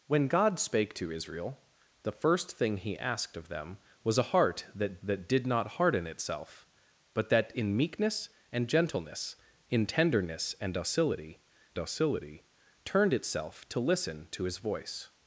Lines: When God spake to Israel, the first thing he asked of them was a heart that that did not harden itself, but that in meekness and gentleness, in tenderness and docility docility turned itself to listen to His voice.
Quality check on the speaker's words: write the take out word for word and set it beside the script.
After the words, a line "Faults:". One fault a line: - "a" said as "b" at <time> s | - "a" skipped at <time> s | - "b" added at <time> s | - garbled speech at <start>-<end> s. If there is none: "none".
When God spake to Israel, the first thing he asked of them was a heart that that did not harden itself, but that in meekness and gentleness, in tenderness and docility docility turned itself to listen to His voice.
Faults:
none